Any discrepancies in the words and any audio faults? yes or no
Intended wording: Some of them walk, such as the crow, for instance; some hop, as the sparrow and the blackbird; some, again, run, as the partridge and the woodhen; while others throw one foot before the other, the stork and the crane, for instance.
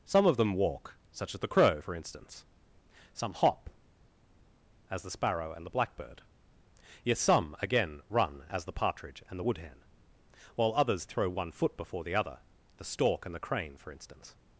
yes